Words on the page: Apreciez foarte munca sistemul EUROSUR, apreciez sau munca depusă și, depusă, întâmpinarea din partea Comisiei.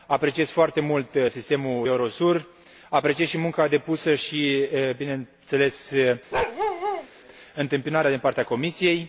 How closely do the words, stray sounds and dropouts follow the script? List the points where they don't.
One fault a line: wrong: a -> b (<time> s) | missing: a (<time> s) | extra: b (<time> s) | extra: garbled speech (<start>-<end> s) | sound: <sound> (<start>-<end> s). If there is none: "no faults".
wrong: munca -> mult (0.8 s)
wrong: sau -> și (3.3 s)
wrong: depusă -> bineînțeles (5.0 s)
sound: bark (6.3-7.1 s)